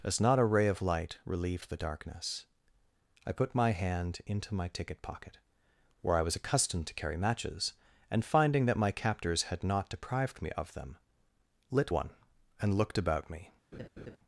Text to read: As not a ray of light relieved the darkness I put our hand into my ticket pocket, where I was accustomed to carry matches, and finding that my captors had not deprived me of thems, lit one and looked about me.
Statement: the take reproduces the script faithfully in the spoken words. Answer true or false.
false